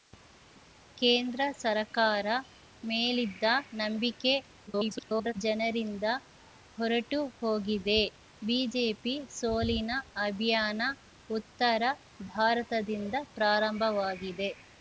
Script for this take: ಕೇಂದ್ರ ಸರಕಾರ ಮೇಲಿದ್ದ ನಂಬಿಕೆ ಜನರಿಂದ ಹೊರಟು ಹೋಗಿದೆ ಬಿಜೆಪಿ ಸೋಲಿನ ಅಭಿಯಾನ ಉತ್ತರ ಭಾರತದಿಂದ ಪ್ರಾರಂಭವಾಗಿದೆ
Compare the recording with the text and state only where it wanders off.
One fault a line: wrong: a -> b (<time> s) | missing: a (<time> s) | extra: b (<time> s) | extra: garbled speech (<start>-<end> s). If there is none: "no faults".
extra: garbled speech (4.7-5.3 s)